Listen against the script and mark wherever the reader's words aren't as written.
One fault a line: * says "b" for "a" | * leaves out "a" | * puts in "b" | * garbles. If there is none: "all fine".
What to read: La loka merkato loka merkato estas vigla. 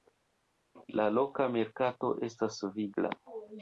* leaves out "loka merkato"